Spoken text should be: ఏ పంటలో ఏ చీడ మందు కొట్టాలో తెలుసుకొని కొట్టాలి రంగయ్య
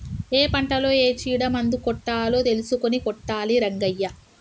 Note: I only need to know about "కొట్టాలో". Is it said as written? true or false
true